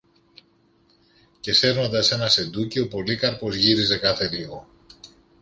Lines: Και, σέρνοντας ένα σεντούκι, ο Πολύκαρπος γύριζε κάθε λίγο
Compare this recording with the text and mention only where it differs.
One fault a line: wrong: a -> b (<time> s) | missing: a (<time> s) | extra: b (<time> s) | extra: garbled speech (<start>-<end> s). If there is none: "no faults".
no faults